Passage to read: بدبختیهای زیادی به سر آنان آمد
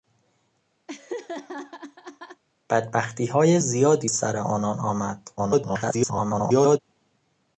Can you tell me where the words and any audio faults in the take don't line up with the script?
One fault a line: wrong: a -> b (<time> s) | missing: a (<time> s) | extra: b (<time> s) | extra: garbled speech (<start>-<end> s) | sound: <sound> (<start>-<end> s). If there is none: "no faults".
sound: laugh (0.9-2.4 s)
missing: به (4.1 s)
extra: garbled speech (5.4-6.8 s)